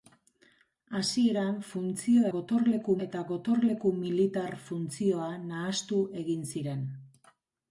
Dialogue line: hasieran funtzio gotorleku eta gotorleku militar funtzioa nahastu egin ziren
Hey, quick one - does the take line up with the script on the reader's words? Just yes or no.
yes